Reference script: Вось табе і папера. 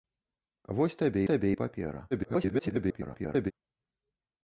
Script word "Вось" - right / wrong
right